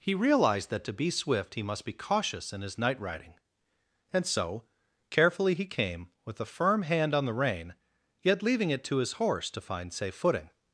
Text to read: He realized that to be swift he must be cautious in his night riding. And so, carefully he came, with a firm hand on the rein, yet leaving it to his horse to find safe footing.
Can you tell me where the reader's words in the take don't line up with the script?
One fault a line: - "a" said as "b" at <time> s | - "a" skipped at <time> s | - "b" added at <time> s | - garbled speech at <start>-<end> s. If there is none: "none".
none